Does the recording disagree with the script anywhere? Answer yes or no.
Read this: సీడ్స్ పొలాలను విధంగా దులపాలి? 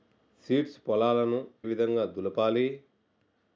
no